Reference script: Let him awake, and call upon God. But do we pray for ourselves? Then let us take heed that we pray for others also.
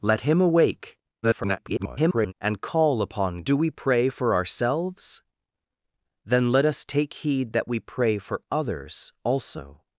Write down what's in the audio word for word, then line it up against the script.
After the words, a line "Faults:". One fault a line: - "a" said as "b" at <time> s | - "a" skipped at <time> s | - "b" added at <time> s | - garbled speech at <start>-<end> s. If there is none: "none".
Let him awake, [garbled] and call upon Do we pray for ourselves? Then let us take heed that we pray for others also.
Faults:
- garbled speech at 1.2-2.3 s
- "God But" skipped at 3.4 s